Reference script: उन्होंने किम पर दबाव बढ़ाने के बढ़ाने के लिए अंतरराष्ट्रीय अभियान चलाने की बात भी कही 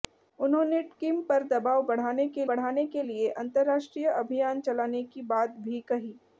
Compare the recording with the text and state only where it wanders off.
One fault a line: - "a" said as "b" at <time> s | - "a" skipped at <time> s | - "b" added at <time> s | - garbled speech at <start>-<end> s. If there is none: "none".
none